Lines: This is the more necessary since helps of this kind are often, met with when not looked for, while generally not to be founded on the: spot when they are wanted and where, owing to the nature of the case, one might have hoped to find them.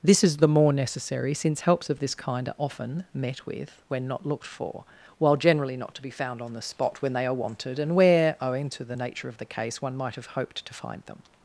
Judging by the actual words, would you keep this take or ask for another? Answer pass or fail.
fail